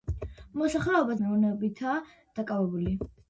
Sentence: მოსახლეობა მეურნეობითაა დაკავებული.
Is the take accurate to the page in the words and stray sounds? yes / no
yes